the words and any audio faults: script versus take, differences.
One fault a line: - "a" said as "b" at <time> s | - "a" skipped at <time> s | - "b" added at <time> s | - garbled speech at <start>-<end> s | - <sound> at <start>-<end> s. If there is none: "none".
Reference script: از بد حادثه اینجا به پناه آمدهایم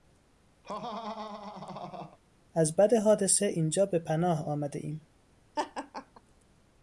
- laugh at 0.6-2.2 s
- laugh at 5.6-6.2 s